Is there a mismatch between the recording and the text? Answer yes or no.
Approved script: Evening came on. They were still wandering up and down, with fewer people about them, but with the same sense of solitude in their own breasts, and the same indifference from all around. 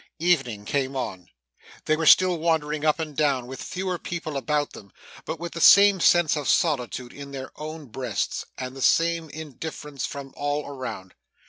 no